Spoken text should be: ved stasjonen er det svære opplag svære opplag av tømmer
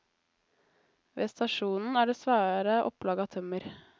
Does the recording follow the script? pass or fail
fail